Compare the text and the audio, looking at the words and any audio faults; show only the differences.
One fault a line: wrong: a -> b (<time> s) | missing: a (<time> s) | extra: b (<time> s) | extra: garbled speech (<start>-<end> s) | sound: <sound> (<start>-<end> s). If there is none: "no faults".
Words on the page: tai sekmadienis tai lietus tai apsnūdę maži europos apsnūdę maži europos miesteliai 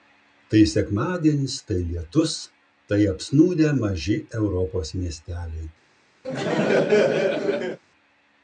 missing: apsnūdę maži europos (4.9 s)
sound: laugh (6.2-7.8 s)